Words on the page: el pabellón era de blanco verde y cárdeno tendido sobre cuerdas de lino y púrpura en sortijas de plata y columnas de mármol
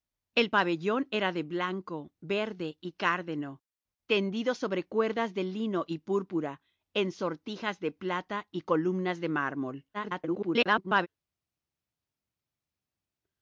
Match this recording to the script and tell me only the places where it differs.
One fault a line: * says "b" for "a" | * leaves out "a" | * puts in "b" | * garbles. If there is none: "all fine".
* garbles